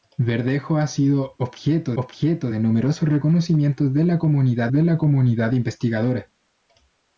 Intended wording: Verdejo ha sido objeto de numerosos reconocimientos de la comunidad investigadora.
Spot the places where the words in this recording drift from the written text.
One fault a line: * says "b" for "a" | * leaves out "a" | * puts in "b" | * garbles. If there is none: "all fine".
* puts in "objeto"
* puts in "de la comunidad"